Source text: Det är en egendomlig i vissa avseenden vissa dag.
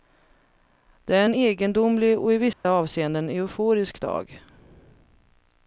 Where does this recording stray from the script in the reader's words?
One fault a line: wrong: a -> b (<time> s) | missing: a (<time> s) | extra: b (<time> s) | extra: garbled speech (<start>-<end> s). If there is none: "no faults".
extra: och (2.2 s)
wrong: vissa -> euforisk (3.3 s)